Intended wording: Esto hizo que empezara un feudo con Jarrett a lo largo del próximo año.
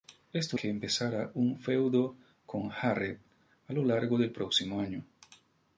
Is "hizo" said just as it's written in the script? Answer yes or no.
no